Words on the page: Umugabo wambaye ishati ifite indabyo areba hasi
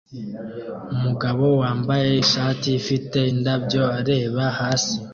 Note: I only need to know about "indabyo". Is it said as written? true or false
true